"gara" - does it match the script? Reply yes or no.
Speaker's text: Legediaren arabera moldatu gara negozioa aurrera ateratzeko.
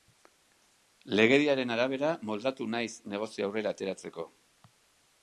no